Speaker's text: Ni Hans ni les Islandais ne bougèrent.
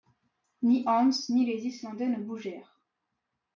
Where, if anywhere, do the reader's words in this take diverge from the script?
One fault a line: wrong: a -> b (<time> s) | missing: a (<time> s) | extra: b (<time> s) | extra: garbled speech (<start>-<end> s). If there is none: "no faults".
no faults